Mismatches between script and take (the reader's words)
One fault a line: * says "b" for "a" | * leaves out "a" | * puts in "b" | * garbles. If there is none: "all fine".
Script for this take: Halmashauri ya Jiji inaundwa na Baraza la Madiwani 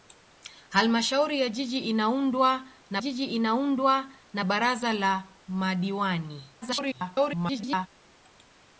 * puts in "Jiji inaundwa na"
* garbles